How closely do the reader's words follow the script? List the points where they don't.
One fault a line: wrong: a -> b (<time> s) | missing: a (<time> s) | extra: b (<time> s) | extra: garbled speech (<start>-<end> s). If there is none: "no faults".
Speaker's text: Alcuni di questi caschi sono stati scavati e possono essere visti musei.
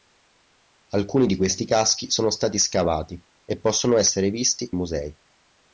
no faults